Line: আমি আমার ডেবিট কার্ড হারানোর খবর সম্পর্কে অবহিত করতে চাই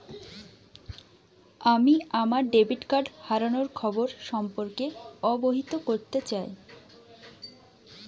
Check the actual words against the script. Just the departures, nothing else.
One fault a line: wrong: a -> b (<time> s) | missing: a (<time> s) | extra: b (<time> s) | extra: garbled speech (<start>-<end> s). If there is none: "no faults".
no faults